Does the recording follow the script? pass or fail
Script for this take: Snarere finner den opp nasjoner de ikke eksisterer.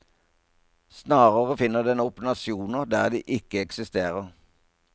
fail